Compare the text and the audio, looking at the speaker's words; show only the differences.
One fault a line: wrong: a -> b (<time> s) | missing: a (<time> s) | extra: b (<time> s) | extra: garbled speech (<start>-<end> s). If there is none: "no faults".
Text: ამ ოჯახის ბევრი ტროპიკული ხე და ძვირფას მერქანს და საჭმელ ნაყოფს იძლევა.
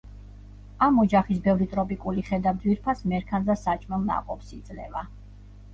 no faults